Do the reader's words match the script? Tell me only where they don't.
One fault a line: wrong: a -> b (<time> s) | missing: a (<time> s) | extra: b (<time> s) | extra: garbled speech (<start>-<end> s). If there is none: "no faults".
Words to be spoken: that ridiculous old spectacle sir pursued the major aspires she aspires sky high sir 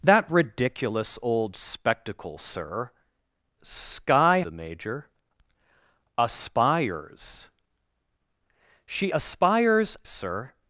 wrong: pursued -> sky (3.6 s)
missing: sky high (10.0 s)